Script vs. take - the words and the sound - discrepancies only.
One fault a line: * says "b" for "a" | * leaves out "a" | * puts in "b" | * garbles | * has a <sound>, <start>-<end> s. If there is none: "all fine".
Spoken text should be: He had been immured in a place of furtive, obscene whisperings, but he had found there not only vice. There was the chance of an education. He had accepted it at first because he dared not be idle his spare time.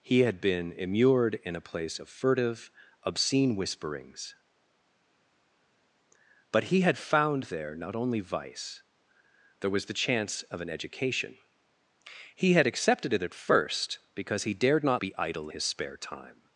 all fine